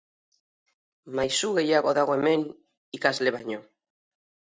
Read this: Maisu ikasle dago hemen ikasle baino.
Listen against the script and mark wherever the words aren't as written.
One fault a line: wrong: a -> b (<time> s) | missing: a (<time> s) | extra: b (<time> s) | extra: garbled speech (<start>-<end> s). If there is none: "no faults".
wrong: ikasle -> gehiago (1.6 s)